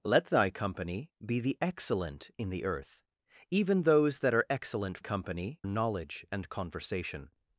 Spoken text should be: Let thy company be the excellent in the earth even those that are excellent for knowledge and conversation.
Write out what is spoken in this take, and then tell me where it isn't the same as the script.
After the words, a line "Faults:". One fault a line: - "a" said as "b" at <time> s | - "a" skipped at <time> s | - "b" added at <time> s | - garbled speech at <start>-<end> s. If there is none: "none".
Let thy company be the excellent in the earth even those that are excellent company knowledge and conversation.
Faults:
- "for" said as "company" at 5.0 s